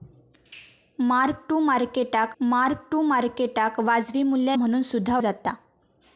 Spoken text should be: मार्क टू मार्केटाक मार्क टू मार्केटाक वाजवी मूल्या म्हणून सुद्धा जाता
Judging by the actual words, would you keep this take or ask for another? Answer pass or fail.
pass